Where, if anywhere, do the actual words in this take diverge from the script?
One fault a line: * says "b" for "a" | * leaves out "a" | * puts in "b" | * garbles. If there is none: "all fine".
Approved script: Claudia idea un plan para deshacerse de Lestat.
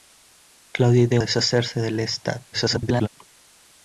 * leaves out "un plan para"
* garbles